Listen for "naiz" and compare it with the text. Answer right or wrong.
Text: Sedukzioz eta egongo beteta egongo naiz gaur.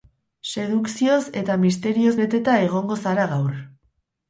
wrong